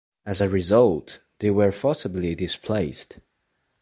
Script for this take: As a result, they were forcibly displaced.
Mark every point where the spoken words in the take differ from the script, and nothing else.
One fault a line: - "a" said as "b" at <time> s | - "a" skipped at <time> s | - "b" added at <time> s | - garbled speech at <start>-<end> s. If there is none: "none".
none